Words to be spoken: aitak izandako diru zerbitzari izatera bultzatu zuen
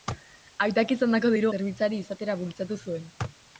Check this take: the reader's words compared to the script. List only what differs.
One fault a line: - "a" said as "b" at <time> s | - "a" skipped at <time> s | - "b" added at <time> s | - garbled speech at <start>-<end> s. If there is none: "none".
none